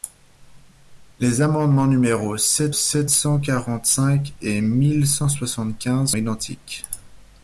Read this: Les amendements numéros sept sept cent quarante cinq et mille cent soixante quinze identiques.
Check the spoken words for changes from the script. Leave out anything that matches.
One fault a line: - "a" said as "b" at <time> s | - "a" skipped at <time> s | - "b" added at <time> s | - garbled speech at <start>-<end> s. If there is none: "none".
none